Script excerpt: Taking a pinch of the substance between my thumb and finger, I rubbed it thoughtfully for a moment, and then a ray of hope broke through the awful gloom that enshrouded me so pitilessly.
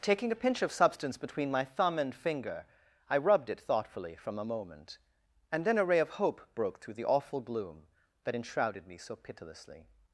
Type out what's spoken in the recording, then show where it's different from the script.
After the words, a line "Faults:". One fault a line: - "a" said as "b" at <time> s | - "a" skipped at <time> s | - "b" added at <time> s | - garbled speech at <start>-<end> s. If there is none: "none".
Taking a pinch of substance between my thumb and finger, I rubbed it thoughtfully from a moment, and then a ray of hope broke through the awful gloom that enshrouded me so pitilessly.
Faults:
- "the" skipped at 0.7 s
- "for" said as "from" at 4.2 s